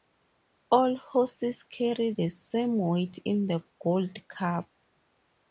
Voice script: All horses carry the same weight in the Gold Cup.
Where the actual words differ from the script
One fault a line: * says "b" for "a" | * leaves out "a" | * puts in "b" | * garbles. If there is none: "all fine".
all fine